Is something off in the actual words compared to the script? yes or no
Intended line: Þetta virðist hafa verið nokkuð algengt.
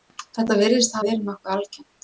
yes